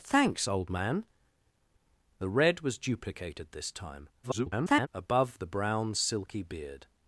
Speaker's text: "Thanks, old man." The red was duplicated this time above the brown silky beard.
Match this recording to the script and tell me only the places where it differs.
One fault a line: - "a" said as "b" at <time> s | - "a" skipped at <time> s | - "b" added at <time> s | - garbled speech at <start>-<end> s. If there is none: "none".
- garbled speech at 4.2-4.9 s